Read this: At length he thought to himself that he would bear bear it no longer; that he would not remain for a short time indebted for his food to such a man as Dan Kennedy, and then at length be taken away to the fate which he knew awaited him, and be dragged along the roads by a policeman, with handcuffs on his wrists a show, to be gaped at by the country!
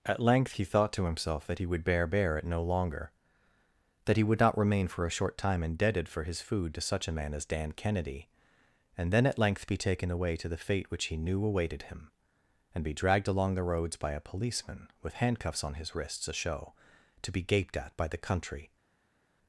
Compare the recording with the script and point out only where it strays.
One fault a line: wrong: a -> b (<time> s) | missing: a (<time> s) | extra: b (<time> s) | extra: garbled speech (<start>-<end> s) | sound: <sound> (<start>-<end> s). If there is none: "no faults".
no faults